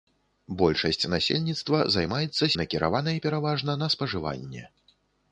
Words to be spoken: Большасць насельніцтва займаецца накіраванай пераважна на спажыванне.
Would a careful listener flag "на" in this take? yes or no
no